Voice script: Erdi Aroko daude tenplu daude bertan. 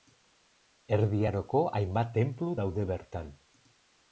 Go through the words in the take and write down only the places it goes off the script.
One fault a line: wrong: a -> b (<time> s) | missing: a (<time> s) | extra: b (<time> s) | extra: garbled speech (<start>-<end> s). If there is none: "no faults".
wrong: daude -> hainbat (1.8 s)